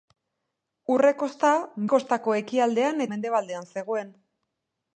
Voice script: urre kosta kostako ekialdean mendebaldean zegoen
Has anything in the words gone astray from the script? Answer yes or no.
no